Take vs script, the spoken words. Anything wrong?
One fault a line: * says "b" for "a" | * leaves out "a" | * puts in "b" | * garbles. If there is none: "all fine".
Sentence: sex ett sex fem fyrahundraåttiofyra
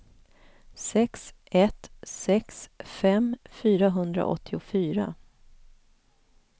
all fine